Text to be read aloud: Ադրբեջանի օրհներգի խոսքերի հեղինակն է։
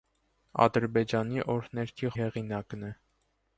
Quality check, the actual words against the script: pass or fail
fail